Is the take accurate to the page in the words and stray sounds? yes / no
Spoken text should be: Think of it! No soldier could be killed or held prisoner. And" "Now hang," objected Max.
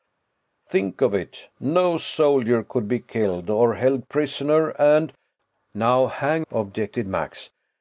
yes